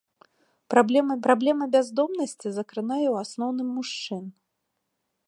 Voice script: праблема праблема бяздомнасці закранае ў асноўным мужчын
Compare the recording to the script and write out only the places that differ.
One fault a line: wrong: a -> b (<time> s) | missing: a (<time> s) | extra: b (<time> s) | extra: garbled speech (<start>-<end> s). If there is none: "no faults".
no faults